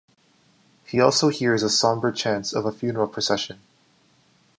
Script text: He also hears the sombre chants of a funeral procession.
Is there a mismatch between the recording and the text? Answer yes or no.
no